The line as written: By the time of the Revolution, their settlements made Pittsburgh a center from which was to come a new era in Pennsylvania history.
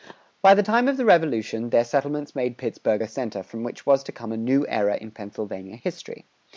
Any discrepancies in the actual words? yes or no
no